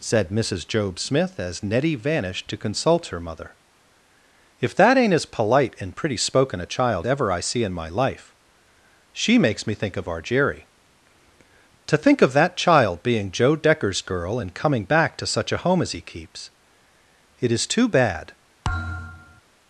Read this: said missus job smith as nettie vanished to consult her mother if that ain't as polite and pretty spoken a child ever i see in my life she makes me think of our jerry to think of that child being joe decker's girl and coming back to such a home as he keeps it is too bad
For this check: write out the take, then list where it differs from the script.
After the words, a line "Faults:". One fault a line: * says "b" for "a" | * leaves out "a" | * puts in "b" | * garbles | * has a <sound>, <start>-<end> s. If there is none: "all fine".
said missus job smith as nettie vanished to consult her mother if that ain't as polite and pretty spoken a child ever i see in my life she makes me think of our jerry to think of that child being joe decker's girl and coming back to such a home as he keeps it is too bad
Faults:
* has a thud, 18.6-19.4 s